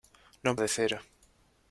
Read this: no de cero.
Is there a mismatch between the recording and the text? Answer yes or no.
no